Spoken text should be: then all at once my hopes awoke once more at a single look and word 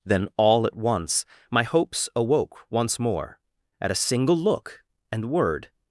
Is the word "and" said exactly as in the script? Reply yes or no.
yes